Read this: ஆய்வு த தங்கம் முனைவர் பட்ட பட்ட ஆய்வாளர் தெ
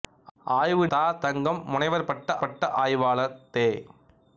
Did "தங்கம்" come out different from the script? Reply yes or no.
no